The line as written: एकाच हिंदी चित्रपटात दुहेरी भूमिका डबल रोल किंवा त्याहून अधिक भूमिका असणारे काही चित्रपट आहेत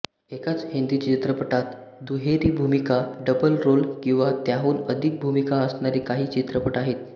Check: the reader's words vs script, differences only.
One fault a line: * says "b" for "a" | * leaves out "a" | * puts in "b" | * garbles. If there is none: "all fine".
all fine